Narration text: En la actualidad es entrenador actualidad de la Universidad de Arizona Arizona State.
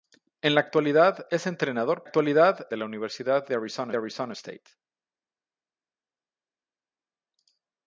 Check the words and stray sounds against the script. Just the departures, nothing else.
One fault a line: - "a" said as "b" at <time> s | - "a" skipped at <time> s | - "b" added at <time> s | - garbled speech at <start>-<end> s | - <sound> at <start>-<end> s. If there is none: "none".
none